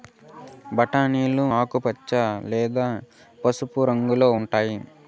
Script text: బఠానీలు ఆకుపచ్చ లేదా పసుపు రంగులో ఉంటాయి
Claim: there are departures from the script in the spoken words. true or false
false